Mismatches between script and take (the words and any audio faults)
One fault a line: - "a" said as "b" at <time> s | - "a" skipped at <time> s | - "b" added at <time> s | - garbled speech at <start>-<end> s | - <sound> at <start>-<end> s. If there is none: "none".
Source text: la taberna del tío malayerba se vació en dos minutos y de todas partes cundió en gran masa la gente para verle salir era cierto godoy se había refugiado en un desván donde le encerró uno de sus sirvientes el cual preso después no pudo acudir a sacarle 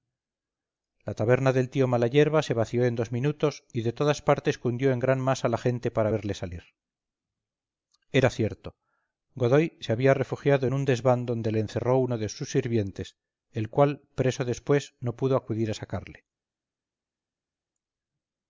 none